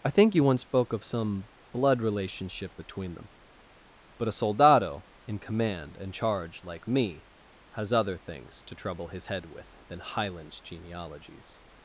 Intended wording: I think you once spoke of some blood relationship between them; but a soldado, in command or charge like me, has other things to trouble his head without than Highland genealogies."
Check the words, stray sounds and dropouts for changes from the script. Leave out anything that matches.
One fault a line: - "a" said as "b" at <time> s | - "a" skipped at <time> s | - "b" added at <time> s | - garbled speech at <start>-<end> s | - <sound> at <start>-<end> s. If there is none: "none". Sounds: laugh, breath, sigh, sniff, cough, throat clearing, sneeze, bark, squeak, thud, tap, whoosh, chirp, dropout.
- "or" said as "and" at 6.0 s
- "without" said as "with" at 9.5 s